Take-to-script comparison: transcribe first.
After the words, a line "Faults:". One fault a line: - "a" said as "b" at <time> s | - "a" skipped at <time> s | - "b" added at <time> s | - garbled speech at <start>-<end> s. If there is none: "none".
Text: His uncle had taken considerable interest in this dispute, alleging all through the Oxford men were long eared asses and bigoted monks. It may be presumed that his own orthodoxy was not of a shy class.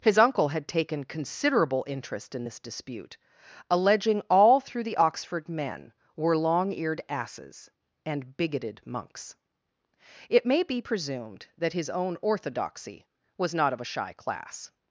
His uncle had taken considerable interest in this dispute, alleging all through the Oxford men were long eared asses and bigoted monks. It may be presumed that his own orthodoxy was not of a shy class.
Faults:
none